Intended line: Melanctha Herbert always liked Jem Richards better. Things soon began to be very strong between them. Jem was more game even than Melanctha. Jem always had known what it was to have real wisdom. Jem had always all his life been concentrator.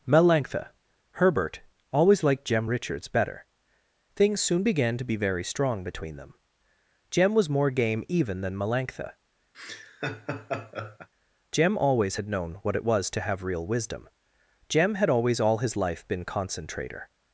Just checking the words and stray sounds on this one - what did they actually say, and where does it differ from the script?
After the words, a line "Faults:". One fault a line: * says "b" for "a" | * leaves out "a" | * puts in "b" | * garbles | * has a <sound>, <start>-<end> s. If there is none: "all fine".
Melanctha Herbert always liked Jem Richards better. Things soon began to be very strong between them. Jem was more game even than Melanctha. Jem always had known what it was to have real wisdom. Jem had always all his life been concentrator.
Faults:
* has a laugh, 9.5-11.1 s